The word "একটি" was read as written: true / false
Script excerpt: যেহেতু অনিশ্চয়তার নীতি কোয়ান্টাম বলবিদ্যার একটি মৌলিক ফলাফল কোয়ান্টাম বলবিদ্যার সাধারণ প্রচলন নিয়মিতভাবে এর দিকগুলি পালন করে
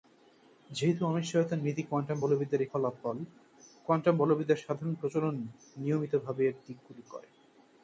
false